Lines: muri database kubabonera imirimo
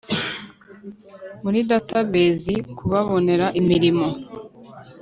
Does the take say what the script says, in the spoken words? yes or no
yes